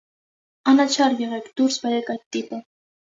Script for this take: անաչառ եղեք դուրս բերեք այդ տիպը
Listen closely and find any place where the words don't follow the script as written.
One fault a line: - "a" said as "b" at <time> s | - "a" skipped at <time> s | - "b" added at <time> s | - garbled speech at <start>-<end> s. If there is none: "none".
none